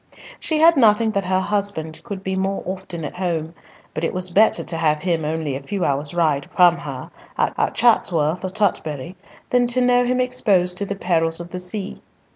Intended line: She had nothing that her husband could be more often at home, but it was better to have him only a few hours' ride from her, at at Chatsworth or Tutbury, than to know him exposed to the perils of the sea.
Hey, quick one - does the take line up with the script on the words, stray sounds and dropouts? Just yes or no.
yes